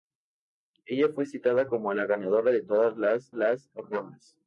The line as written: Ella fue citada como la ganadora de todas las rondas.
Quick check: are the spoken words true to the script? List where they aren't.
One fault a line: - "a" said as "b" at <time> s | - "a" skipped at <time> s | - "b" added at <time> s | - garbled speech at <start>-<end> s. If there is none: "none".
- "las" added at 3.3 s